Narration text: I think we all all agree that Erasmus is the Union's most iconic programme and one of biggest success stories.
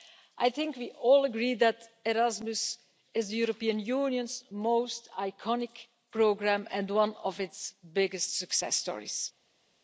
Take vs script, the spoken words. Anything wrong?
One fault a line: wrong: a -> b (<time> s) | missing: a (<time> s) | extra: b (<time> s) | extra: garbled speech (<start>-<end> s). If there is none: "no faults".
missing: all (1.2 s)
extra: European (3.4 s)
extra: its (7.4 s)